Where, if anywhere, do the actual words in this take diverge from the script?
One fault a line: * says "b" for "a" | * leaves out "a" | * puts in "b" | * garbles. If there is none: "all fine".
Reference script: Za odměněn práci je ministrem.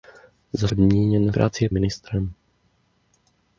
all fine